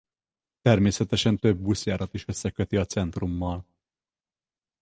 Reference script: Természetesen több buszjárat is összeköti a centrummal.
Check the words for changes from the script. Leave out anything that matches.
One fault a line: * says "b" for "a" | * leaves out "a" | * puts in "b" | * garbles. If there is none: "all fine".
all fine